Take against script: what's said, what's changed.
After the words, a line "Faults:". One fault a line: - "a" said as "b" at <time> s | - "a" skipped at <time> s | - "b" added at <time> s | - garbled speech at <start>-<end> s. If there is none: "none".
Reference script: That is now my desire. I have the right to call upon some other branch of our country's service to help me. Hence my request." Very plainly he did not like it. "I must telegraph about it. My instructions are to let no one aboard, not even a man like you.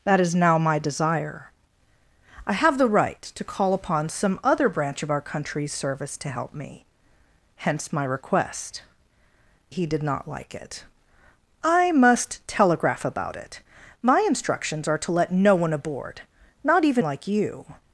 That is now my desire. I have the right to call upon some other branch of our country's service to help me. Hence my request." He did not like it. "I must telegraph about it. My instructions are to let no one aboard, not even like you.
Faults:
- "Very plainly" skipped at 8.8 s
- "a man" skipped at 17.0 s